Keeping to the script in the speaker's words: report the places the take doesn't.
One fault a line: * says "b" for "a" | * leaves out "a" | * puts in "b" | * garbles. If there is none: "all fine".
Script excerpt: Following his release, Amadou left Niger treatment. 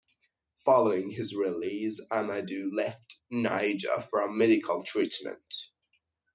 * puts in "for medical"